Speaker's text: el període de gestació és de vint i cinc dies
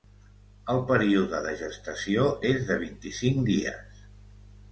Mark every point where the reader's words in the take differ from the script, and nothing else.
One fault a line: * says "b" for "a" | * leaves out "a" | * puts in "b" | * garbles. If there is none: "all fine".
all fine